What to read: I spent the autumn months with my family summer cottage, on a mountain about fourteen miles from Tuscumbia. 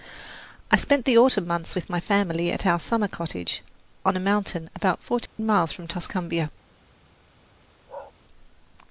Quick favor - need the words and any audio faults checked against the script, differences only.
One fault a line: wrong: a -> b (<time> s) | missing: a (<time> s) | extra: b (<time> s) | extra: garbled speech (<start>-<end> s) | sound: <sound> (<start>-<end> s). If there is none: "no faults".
extra: at our (2.5 s)
sound: dropout (5.3-5.4 s)
sound: bark (7.9-8.1 s)